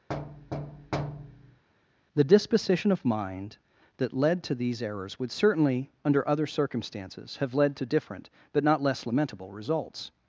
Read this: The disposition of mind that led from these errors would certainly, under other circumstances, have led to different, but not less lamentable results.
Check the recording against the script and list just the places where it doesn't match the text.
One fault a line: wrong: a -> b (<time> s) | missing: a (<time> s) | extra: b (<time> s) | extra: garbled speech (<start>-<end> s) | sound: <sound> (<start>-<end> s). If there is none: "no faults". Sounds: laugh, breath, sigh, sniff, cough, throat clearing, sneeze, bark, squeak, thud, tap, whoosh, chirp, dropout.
sound: thud (0.1-1.6 s)
wrong: from -> to (4.4 s)